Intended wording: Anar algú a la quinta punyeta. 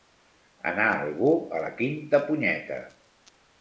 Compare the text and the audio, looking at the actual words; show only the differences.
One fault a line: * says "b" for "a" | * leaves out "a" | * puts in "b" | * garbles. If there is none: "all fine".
all fine